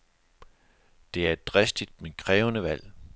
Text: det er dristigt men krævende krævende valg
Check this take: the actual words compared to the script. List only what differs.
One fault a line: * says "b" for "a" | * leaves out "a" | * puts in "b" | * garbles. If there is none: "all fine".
* puts in "et"
* leaves out "krævende"